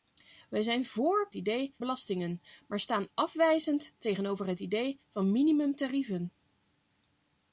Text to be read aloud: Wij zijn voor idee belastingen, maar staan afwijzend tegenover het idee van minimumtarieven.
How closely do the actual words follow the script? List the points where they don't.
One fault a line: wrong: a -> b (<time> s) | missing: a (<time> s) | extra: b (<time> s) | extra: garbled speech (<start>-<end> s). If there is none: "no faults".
no faults